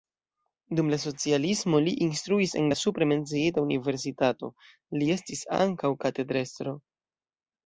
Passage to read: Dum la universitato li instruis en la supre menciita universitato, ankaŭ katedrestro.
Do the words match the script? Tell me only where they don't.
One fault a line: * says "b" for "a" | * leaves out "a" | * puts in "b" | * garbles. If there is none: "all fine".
* says "socialismo" for "universitato"
* puts in "li estis"